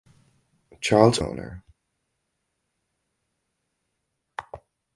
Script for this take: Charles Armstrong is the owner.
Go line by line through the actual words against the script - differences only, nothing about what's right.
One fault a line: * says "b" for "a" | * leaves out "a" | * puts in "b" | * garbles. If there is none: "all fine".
* leaves out "Armstrong is the"